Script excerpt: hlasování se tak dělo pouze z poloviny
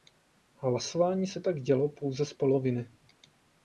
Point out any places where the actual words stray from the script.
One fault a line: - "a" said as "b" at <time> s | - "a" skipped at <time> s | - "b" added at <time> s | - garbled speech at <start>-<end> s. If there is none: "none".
none